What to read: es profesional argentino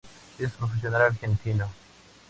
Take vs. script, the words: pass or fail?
pass